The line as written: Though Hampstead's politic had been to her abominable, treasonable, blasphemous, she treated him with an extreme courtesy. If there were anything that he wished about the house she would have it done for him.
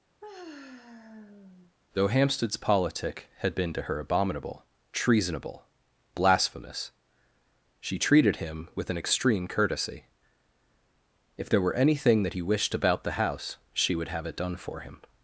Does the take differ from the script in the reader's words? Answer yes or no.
no